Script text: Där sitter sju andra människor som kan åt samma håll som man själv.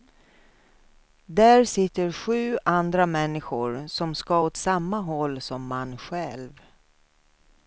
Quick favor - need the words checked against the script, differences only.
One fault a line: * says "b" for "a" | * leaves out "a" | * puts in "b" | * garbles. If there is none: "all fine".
* says "ska" for "kan"